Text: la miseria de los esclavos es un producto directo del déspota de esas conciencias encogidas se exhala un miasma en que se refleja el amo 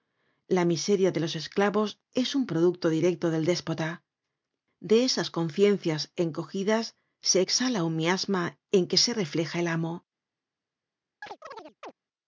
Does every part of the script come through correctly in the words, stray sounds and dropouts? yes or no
no